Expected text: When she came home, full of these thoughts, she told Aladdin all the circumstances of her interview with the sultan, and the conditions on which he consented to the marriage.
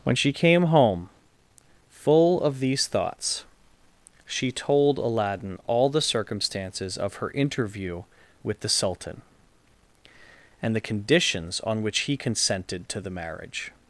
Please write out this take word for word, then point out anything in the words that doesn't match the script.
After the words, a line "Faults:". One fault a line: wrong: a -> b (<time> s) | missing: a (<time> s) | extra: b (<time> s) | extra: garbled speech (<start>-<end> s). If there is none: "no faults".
When she came home, full of these thoughts, she told Aladdin all the circumstances of her interview with the sultan, and the conditions on which he consented to the marriage.
Faults:
no faults